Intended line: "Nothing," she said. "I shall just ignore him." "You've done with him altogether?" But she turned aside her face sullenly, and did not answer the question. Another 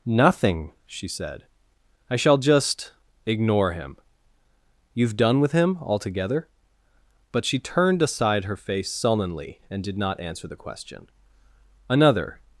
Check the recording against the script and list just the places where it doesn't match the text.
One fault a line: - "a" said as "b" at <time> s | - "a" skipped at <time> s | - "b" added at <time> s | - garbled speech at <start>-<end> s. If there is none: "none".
none